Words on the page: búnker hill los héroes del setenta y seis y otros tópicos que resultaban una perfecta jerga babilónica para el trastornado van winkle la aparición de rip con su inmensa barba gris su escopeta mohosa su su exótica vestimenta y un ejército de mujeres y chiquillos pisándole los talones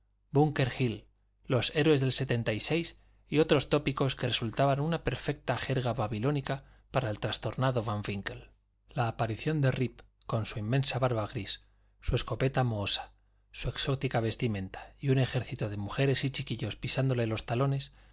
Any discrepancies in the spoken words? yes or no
yes